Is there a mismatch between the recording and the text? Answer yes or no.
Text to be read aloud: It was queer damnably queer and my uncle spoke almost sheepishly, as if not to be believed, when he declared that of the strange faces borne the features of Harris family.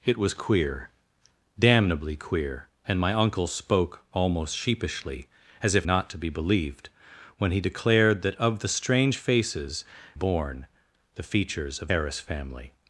no